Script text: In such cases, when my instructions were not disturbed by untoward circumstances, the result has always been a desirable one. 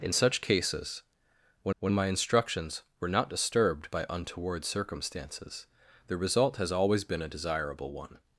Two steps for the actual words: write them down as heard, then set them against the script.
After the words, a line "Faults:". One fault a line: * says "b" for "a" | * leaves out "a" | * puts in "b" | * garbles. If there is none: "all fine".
In such cases, when when my instructions were not disturbed by untoward circumstances, the result has always been a desirable one.
Faults:
* puts in "when"